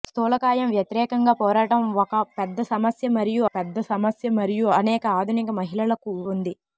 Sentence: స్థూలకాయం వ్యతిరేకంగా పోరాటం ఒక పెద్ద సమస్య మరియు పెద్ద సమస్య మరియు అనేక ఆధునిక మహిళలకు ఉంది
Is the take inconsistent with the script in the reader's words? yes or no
no